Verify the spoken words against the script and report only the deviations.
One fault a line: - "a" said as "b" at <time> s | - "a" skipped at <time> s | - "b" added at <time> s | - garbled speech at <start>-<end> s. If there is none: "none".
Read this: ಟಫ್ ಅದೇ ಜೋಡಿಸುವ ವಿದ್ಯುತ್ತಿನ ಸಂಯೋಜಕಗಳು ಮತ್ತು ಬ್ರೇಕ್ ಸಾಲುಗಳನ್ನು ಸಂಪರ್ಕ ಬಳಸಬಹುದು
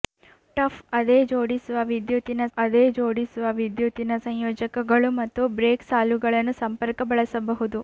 - "ಅದೇ ಜೋಡಿಸುವ ವಿದ್ಯುತ್ತಿನ" added at 2.6 s